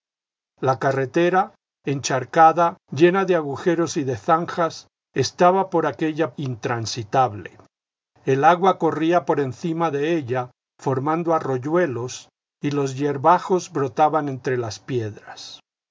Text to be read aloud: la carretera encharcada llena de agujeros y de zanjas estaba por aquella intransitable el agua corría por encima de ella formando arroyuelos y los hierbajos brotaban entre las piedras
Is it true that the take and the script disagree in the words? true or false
false